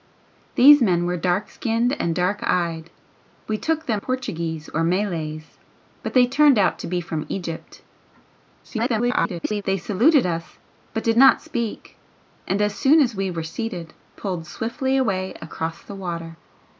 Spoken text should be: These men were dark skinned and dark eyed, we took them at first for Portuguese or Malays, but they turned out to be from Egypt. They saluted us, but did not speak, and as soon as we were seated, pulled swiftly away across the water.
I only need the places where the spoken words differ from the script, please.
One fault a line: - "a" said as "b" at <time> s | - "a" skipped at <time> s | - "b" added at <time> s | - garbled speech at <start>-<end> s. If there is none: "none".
- "at first for" skipped at 4.0 s
- garbled speech at 8.6-9.6 s